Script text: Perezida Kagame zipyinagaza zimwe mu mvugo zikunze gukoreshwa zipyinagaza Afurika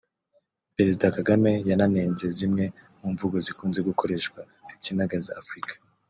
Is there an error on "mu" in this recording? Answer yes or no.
no